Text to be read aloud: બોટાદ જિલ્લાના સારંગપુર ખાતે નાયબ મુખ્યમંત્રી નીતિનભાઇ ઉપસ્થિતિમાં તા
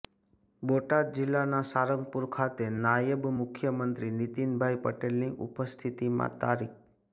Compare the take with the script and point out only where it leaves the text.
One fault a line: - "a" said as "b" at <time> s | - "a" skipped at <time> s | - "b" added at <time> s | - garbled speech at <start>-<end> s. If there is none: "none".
- "પટેલની" added at 4.8 s